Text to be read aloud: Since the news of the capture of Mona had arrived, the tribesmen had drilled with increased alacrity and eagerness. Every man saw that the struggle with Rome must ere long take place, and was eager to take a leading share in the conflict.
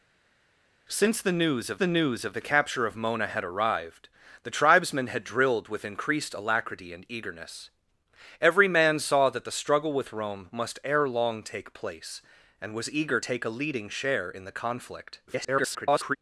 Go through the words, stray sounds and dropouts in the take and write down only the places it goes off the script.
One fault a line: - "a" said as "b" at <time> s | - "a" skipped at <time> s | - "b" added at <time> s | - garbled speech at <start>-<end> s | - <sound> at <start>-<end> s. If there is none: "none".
- "news of the" added at 1.9 s
- "to" skipped at 13.2 s
- garbled speech at 15.3-16.2 s